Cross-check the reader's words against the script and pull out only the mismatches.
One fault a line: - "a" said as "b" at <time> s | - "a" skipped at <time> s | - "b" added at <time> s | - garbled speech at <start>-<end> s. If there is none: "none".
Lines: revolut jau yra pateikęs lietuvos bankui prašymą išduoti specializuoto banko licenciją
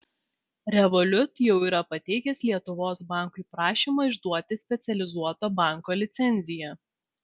none